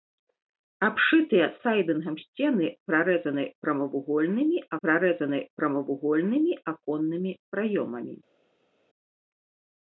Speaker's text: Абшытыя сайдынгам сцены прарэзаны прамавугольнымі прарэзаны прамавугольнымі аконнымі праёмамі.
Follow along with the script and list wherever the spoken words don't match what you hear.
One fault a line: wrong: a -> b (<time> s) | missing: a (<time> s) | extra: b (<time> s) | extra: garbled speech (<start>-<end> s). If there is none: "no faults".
no faults